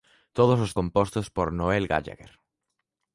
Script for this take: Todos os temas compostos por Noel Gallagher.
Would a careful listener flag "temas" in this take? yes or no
yes